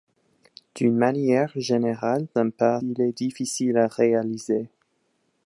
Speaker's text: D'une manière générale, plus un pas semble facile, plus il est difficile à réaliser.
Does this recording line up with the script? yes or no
no